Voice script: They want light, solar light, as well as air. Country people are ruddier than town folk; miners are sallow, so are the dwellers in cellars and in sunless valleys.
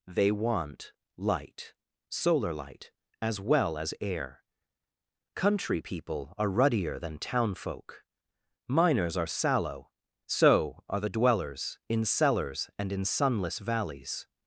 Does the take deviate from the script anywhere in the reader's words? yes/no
no